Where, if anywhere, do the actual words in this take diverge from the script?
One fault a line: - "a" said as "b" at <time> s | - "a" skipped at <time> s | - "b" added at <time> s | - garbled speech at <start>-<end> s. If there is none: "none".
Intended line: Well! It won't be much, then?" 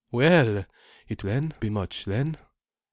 - "won't" said as "then" at 1.2 s